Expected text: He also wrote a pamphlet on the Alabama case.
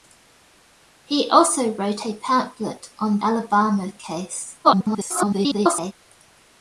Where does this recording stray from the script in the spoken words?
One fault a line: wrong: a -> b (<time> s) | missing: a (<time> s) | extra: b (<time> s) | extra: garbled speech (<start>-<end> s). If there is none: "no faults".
missing: the (3.2 s)
extra: garbled speech (4.6-5.9 s)